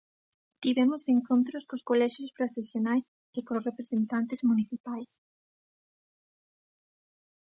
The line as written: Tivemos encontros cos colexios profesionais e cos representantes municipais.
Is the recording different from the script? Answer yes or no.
no